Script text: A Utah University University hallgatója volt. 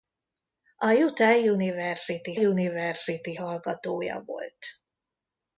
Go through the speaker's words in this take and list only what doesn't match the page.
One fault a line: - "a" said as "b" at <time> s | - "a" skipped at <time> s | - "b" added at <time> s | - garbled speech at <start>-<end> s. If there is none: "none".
none